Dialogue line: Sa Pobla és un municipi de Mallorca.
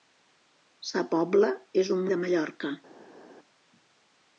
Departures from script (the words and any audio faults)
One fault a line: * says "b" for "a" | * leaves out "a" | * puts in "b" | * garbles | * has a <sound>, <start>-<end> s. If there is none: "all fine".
* leaves out "municipi"